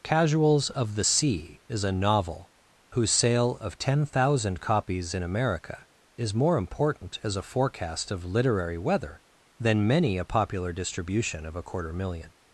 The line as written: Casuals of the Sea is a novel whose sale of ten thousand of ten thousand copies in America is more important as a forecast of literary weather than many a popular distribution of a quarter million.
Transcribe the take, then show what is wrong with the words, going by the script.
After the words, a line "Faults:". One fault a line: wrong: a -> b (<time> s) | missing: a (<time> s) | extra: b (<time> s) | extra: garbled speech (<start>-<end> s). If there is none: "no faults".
Casuals of the Sea is a novel whose sale of ten thousand copies in America is more important as a forecast of literary weather than many a popular distribution of a quarter million.
Faults:
missing: of ten thousand (4.6 s)